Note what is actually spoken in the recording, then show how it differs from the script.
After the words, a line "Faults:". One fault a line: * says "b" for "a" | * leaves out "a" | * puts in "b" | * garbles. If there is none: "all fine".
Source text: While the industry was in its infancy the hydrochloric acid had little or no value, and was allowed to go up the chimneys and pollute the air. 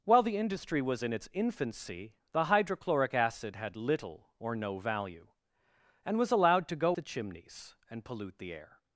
While the industry was in its infancy the hydrochloric acid had little or no value, and was allowed to go the chimneys and pollute the air.
Faults:
* leaves out "up"